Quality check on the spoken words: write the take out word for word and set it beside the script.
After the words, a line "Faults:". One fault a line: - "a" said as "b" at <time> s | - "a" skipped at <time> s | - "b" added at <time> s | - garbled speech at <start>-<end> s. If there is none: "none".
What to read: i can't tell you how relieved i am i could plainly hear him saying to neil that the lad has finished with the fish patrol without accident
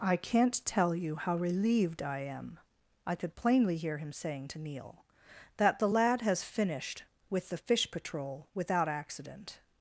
i can't tell you how relieved i am i could plainly hear him saying to neil that the lad has finished with the fish patrol without accident
Faults:
none